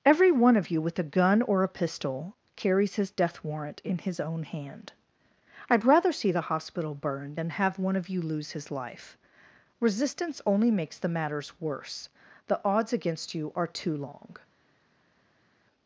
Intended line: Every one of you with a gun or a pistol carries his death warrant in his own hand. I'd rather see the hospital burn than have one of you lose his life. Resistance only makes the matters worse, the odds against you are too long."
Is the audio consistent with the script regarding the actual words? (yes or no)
yes